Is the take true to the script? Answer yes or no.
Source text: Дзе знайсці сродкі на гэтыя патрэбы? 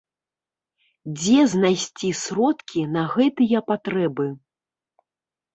yes